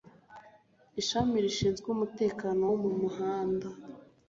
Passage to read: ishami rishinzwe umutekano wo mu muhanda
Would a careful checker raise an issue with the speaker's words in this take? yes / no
no